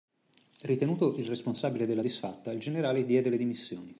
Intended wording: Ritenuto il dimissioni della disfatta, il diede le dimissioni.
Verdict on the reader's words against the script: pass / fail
fail